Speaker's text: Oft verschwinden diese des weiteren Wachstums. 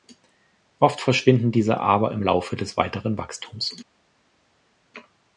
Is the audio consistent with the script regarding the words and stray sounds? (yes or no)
no